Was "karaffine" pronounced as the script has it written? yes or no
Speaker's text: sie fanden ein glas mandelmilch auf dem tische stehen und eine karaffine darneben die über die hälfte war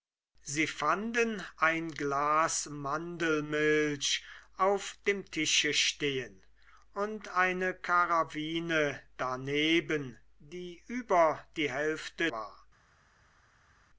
yes